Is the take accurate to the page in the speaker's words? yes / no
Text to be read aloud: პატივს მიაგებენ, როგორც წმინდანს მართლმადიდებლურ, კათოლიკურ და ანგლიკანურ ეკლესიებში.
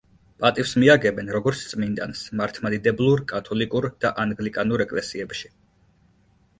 yes